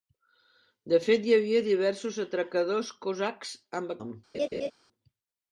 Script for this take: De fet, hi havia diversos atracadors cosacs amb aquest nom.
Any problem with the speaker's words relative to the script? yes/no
yes